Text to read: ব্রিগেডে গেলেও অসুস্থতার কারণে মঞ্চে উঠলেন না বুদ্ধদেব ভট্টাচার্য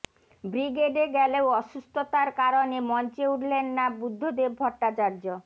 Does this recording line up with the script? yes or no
yes